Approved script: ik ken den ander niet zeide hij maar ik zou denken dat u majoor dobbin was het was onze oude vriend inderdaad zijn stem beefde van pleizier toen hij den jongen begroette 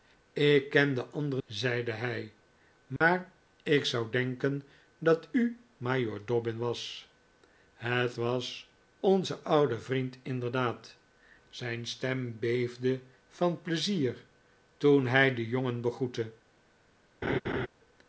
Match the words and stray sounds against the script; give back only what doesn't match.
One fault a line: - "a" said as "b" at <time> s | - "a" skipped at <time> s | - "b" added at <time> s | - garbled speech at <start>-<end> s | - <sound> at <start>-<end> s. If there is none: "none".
- "niet" skipped at 1.4 s
- dropout at 3.0-3.0 s
- laugh at 17.2-17.7 s